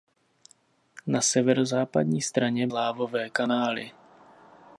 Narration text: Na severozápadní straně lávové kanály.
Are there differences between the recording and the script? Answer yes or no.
no